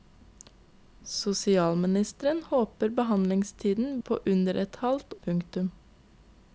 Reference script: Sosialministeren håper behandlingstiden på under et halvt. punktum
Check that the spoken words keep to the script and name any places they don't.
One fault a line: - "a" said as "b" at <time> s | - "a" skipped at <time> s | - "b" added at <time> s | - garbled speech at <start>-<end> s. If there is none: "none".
none